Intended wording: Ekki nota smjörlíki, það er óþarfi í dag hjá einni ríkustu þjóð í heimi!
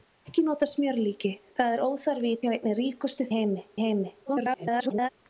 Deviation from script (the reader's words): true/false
true